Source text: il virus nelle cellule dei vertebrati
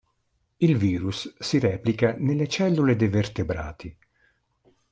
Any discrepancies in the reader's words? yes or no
yes